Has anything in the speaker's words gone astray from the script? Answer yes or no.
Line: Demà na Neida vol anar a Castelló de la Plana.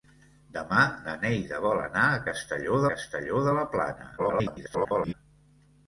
yes